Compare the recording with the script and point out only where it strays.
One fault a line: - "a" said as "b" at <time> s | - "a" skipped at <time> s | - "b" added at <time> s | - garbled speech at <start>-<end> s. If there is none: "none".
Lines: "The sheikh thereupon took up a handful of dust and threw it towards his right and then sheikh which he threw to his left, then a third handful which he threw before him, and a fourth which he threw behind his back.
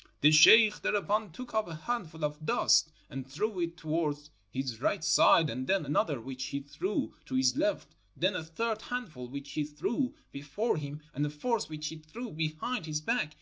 - "side" added at 5.0 s
- "sheikh" said as "another" at 5.8 s